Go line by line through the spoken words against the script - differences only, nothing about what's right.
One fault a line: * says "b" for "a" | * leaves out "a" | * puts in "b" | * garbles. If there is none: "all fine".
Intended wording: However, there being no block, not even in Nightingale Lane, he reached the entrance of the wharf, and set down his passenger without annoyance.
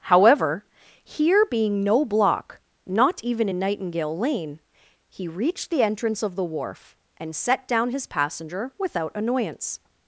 * says "here" for "there"